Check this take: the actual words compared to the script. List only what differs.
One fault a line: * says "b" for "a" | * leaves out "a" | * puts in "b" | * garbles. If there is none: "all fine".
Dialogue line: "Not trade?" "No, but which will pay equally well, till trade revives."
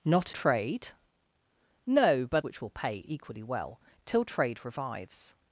all fine